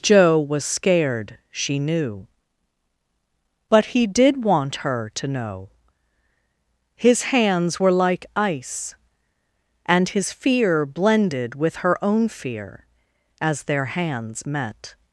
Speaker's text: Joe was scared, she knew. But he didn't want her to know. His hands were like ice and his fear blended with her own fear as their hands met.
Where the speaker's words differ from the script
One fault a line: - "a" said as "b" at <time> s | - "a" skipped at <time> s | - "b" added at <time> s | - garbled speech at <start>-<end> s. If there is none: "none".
- "didn't" said as "did" at 4.1 s